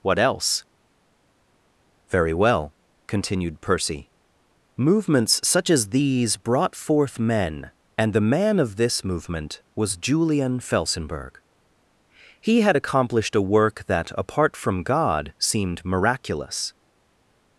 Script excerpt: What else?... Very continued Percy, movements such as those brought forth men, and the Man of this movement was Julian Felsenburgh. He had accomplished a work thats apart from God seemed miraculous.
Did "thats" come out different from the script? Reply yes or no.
yes